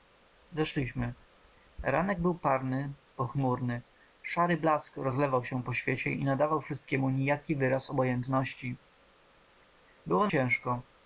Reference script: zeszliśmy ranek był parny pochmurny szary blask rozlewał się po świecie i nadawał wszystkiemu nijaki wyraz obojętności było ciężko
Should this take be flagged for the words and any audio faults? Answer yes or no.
no